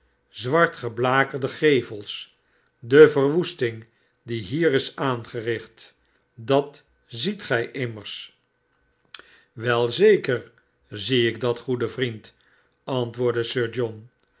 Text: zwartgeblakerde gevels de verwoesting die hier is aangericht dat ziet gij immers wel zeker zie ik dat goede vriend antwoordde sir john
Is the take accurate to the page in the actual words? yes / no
yes